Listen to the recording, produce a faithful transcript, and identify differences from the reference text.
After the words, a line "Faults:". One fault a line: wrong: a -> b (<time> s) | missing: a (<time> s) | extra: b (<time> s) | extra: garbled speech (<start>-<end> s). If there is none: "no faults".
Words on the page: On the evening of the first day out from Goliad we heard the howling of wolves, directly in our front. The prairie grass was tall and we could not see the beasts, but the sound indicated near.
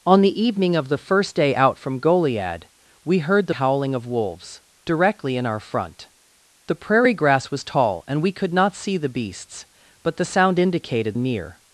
On the evening of the first day out from Goliad we heard the howling of wolves, directly in our front. The prairie grass was tall and we could not see the beasts, but the sound indicated near.
Faults:
no faults